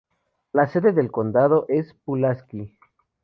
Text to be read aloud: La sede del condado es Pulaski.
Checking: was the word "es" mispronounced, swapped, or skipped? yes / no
no